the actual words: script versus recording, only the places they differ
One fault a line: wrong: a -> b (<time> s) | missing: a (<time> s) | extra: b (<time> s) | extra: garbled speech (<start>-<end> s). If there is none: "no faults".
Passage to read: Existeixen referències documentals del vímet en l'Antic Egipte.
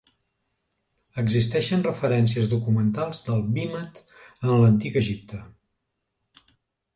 no faults